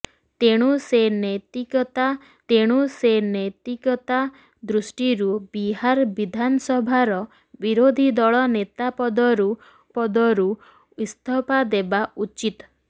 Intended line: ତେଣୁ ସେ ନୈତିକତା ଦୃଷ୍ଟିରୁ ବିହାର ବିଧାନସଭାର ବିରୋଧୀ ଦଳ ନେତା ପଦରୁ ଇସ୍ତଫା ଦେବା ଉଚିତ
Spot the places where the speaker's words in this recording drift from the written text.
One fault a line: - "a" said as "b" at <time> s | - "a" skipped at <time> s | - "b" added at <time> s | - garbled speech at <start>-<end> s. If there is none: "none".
- "ତେଣୁ ସେ ନୈତିକତା" added at 2.5 s
- "ପଦରୁ" added at 10.0 s